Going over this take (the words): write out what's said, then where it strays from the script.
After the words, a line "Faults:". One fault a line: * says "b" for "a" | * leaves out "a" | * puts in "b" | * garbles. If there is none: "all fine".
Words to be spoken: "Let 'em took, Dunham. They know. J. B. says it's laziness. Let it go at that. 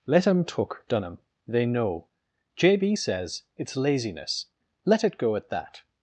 "Let 'em took, Dunham. They know. J. B. says it's laziness. Let it go at that.
Faults:
all fine